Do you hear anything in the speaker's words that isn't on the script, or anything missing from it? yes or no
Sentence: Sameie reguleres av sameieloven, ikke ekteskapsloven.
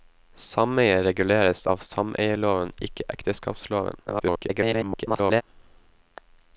yes